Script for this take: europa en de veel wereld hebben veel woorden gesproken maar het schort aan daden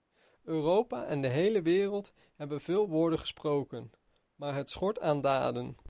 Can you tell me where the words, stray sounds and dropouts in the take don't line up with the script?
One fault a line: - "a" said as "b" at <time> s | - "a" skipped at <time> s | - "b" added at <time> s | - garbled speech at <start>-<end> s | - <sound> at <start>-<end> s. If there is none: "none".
- "veel" said as "hele" at 1.3 s